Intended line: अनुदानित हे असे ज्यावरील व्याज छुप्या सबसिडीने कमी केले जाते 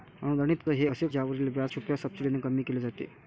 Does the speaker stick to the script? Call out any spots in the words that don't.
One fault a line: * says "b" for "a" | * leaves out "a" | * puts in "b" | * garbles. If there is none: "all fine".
all fine